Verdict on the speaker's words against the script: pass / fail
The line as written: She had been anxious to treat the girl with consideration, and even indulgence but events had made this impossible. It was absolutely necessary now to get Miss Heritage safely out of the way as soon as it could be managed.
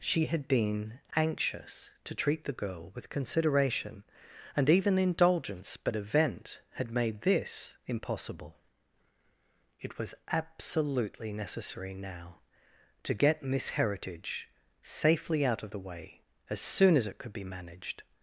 fail